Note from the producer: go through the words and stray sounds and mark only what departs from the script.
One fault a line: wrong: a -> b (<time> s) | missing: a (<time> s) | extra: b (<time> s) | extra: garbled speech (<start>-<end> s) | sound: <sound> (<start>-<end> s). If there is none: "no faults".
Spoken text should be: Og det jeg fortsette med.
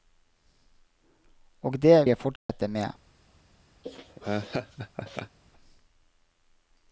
sound: dropout (2.4-2.5 s)
sound: laugh (3.8-5.4 s)